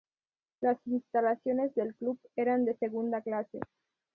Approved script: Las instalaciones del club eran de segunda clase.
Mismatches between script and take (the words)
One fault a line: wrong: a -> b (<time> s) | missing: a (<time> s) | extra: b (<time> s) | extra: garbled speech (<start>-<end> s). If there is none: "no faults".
no faults